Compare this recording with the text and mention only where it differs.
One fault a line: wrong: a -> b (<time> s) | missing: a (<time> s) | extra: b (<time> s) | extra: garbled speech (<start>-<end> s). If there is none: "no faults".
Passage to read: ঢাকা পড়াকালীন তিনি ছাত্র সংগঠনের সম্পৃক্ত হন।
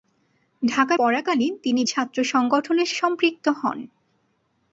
no faults